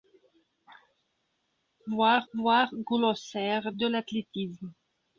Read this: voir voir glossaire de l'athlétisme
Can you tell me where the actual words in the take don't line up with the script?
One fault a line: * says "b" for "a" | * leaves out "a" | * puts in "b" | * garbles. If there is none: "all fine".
all fine